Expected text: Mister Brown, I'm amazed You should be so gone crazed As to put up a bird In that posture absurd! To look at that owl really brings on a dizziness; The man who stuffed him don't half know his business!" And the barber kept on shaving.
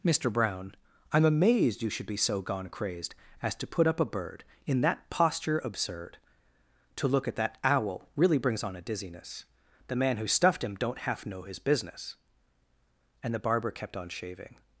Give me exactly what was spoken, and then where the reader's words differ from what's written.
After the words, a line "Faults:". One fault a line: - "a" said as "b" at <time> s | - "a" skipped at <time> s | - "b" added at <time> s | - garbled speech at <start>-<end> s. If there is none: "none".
Mister Brown, I'm amazed You should be so gone crazed As to put up a bird In that posture absurd! To look at that owl really brings on a dizziness; The man who stuffed him don't half know his business!" And the barber kept on shaving.
Faults:
none